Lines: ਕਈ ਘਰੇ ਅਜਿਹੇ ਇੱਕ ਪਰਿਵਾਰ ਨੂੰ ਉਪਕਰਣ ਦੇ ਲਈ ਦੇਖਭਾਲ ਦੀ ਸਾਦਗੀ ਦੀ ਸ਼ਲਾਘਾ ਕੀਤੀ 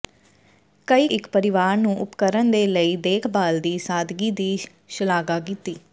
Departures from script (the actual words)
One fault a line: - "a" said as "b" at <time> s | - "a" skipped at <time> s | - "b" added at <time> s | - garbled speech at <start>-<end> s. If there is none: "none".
- "ਘਰੇ ਅਜਿਹੇ" skipped at 1.1 s